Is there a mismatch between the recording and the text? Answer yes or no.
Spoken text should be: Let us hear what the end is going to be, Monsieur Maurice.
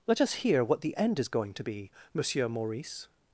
no